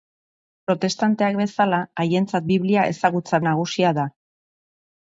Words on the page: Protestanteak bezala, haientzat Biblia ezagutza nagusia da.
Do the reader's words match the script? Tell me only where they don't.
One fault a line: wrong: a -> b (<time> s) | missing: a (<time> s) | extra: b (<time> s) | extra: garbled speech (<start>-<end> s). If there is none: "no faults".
no faults